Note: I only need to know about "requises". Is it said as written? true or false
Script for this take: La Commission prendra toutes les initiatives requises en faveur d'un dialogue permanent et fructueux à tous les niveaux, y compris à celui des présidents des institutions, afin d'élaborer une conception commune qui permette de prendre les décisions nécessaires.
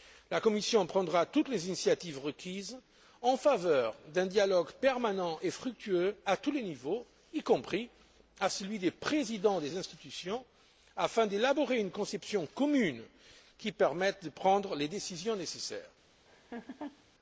true